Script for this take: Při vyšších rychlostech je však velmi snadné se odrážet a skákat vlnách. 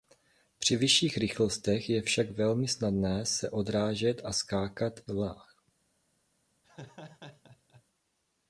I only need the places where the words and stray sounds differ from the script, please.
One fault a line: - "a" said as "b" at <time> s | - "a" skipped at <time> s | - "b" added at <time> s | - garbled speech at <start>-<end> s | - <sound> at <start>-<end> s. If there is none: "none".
- laugh at 6.6-7.8 s